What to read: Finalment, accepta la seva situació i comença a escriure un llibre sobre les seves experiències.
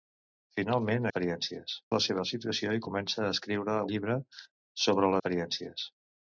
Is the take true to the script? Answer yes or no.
no